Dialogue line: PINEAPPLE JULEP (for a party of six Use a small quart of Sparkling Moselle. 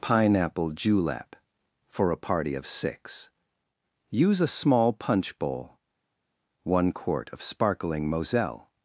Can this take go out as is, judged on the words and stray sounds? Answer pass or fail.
fail